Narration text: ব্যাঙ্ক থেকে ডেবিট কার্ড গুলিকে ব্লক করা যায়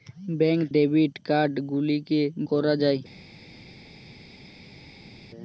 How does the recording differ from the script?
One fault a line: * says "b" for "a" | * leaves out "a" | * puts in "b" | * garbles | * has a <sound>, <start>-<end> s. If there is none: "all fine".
* leaves out "থেকে"
* leaves out "ব্লক"